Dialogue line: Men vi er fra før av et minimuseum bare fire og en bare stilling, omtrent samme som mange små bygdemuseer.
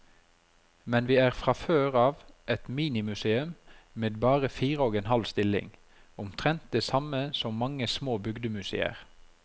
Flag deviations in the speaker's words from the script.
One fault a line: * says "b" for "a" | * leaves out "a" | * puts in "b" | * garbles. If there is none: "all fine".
* puts in "med"
* says "halv" for "bare"
* puts in "det"